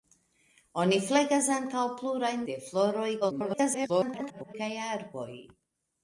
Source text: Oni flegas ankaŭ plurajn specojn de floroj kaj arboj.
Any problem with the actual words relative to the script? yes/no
yes